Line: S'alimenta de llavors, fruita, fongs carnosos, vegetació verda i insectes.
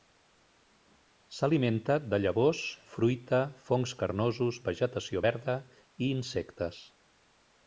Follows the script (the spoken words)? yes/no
yes